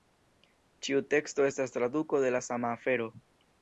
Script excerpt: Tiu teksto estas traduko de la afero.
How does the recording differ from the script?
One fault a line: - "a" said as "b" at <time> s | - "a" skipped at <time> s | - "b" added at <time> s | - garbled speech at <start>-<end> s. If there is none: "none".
- "Tiu" said as "Ĉiu" at 0.9 s
- "sama" added at 2.5 s